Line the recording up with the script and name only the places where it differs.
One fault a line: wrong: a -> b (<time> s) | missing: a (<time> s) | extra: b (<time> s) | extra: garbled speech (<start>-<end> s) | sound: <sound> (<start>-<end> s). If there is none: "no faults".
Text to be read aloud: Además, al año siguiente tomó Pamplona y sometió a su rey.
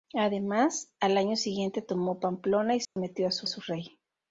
sound: dropout (2.8-3.0 s)
extra: su (3.5 s)